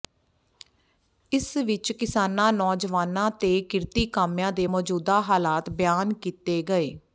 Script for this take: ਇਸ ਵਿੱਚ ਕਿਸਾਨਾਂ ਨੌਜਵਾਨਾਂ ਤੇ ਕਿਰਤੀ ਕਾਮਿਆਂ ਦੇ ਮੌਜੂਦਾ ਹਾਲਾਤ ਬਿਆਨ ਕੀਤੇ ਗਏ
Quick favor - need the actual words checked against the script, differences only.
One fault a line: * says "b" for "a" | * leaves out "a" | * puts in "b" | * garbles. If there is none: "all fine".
all fine